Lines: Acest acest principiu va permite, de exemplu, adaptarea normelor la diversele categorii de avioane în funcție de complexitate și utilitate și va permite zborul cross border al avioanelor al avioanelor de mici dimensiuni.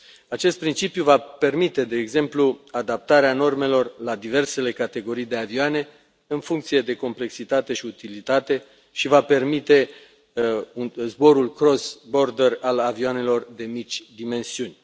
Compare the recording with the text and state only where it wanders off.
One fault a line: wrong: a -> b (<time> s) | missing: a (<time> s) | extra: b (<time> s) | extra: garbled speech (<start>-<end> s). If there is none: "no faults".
missing: acest (0.6 s)
missing: al avioanelor (13.5 s)